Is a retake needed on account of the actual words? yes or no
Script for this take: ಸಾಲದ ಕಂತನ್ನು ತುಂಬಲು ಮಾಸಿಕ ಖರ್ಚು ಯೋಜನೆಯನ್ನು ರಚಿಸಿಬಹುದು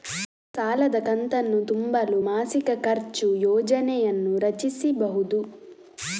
no